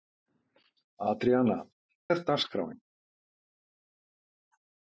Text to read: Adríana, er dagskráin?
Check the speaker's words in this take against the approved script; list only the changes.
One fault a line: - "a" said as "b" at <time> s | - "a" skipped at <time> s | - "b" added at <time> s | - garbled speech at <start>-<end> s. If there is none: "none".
none